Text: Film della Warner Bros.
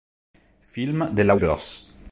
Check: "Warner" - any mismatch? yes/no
yes